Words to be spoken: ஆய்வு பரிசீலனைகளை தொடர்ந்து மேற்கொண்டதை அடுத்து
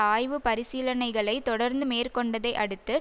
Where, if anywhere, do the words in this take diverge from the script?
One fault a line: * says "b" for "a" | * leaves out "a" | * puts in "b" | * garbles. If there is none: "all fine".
all fine